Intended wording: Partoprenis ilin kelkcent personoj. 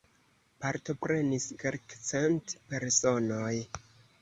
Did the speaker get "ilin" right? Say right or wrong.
wrong